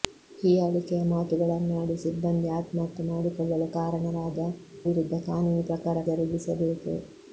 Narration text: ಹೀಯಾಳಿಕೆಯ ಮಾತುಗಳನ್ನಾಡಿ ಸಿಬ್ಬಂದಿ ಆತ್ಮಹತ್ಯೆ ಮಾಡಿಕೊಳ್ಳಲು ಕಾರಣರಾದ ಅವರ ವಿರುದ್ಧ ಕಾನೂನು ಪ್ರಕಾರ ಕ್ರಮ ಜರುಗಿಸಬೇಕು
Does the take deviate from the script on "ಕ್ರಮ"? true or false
true